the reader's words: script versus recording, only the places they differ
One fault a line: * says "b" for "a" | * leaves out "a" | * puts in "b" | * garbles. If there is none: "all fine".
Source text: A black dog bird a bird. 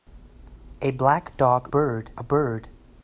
all fine